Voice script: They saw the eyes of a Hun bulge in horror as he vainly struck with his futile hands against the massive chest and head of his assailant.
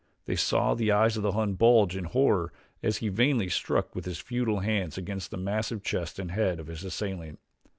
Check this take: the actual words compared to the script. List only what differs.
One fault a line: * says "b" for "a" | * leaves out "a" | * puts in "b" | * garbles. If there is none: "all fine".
* says "the" for "a"